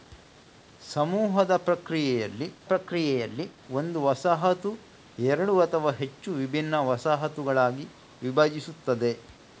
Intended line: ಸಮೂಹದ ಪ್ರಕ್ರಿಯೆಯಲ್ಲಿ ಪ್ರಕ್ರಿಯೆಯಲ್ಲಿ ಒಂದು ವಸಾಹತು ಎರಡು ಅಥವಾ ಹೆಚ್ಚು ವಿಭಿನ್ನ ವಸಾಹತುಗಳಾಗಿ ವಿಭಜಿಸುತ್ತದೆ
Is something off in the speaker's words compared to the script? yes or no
no